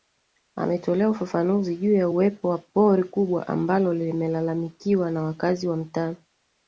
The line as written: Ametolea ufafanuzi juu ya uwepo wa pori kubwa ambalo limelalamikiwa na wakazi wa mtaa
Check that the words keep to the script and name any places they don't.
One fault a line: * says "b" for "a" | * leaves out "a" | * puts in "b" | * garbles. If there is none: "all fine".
all fine